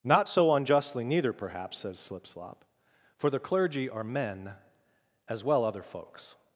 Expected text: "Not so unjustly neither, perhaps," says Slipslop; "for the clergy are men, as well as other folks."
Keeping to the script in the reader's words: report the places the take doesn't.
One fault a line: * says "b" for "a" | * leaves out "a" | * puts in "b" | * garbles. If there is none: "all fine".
* leaves out "as"